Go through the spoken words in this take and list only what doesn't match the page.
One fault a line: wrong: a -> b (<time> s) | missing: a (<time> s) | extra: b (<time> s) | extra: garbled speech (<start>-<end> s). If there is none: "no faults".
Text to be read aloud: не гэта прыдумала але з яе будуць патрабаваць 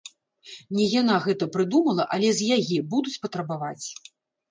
extra: яна (1.0 s)